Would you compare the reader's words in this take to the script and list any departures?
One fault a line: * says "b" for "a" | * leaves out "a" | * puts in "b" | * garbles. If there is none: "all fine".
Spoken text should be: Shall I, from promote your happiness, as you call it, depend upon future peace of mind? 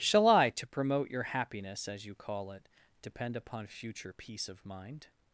* says "to" for "from"